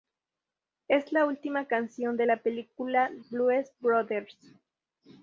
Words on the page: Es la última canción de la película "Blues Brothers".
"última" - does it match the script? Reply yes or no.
yes